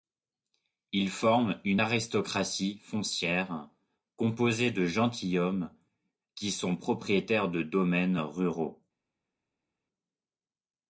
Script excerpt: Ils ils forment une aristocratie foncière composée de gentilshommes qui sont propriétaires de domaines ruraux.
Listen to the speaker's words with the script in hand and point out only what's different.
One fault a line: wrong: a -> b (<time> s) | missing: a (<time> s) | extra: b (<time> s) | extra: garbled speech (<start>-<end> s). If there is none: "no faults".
missing: ils (1.1 s)